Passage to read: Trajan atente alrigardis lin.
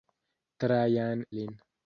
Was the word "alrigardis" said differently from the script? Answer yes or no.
yes